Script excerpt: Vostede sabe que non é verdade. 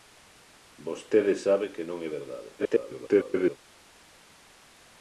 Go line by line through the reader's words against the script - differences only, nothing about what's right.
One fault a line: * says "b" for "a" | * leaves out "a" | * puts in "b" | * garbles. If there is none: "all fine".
* garbles